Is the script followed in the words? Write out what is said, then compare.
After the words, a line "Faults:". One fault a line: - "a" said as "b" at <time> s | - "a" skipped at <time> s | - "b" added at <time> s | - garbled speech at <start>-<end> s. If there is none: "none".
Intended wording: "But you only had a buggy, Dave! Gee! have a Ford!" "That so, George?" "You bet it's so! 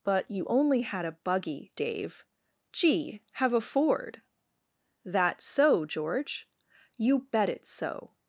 "But you only had a buggy, Dave! Gee! have a Ford!" "That so, George?" "You bet it's so!
Faults:
none